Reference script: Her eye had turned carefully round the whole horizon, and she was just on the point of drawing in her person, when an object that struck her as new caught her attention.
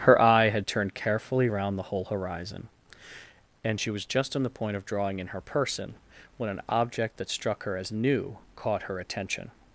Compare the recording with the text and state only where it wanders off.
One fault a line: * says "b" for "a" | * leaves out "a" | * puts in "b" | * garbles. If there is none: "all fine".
all fine